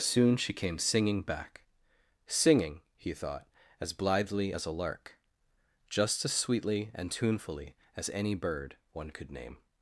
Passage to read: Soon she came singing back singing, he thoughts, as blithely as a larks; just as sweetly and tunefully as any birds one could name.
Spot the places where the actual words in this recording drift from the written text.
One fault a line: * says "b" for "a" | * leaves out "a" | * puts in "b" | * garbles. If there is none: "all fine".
* says "thought" for "thoughts"
* says "lark" for "larks"
* says "bird" for "birds"